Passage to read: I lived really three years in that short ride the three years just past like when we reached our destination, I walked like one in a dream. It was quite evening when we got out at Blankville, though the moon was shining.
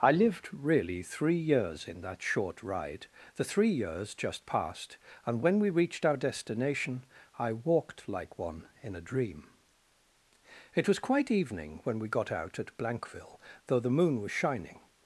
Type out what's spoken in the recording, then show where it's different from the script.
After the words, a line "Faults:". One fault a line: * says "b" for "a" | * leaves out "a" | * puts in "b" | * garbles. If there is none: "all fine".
I lived really three years in that short ride the three years just past and when we reached our destination, I walked like one in a dream. It was quite evening when we got out at Blankville, though the moon was shining.
Faults:
* says "and" for "like"